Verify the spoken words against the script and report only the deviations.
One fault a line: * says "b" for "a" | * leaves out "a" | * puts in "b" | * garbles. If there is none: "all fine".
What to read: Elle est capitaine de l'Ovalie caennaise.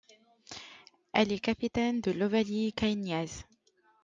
all fine